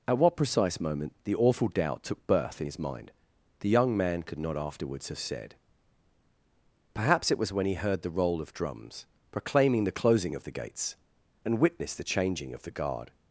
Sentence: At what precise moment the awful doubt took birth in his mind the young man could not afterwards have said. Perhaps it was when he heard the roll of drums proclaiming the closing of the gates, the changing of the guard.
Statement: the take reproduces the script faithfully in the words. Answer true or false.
false